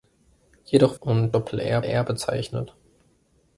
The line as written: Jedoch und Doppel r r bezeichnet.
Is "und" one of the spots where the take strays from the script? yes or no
no